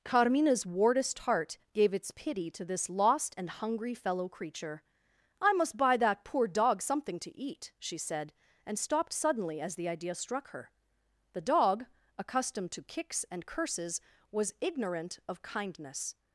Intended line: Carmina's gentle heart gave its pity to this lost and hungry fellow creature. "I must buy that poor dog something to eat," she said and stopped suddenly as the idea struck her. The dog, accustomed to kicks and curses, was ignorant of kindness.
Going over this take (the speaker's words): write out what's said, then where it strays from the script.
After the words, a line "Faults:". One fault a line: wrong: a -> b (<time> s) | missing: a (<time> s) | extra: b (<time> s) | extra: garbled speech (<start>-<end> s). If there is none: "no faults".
Carmina's wardest heart gave its pity to this lost and hungry fellow creature. "I must buy that poor dog something to eat," she said and stopped suddenly as the idea struck her. The dog, accustomed to kicks and curses, was ignorant of kindness.
Faults:
wrong: gentle -> wardest (0.7 s)